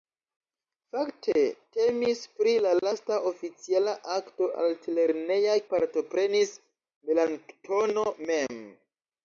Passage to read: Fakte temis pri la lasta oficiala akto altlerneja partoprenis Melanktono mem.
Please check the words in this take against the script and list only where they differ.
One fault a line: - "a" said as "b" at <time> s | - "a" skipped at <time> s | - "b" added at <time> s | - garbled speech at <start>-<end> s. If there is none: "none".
none